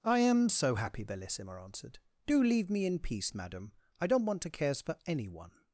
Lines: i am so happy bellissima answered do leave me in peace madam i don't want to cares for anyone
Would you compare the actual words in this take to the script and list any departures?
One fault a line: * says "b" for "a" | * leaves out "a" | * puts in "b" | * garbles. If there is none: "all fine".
all fine